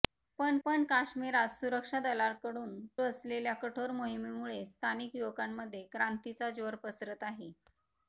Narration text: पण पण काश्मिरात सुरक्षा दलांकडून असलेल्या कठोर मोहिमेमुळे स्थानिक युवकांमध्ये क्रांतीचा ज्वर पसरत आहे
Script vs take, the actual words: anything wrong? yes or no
no